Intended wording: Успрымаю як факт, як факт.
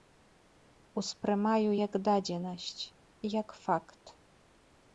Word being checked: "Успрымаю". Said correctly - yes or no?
yes